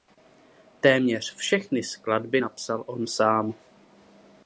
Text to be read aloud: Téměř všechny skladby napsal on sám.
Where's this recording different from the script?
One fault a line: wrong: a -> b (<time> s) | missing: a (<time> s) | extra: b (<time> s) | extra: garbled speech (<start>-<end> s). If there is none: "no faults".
no faults